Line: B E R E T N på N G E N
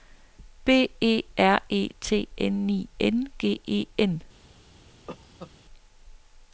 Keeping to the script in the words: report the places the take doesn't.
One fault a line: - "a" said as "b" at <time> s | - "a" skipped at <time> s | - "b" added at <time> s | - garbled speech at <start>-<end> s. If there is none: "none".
- "på" said as "I" at 2.7 s